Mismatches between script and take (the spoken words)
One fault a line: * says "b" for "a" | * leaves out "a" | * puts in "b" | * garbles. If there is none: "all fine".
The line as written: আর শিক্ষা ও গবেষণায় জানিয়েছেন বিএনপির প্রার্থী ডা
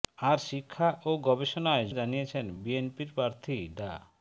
all fine